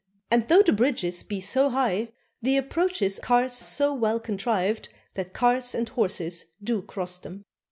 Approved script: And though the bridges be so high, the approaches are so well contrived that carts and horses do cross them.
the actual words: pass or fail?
fail